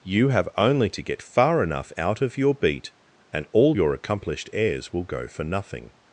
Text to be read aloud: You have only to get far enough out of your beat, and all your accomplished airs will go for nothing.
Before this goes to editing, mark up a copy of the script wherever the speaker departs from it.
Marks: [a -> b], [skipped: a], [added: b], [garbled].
You have only to get far enough out of your beat, and all your accomplished airs will go for nothing.